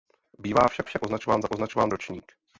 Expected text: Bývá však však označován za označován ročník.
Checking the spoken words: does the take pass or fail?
pass